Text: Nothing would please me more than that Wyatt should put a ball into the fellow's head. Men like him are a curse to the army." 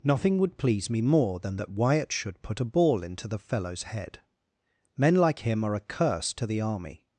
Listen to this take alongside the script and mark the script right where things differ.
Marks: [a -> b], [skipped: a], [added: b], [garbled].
Nothing would please me more than that Wyatt should put a ball into the fellow's head. Men like him are a curse to the army."